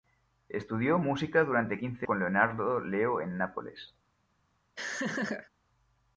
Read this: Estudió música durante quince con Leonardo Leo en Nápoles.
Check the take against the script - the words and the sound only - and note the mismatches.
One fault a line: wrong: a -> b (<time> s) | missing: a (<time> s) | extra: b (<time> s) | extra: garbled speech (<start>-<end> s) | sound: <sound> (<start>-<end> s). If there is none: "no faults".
sound: laugh (4.8-5.5 s)